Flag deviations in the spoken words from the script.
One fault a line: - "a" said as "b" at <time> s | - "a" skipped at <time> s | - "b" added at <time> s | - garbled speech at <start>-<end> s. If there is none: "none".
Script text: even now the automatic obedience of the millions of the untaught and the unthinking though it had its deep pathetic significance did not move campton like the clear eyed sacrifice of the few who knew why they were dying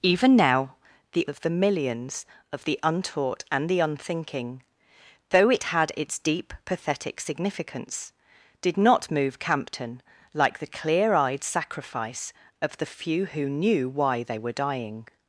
- "automatic obedience" skipped at 1.3 s